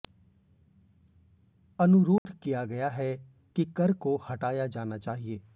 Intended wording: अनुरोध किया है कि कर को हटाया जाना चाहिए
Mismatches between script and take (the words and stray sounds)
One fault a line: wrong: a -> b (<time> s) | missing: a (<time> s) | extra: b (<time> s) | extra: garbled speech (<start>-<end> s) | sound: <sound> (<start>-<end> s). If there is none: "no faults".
sound: dropout (2.2-2.3 s)
extra: गया (2.6 s)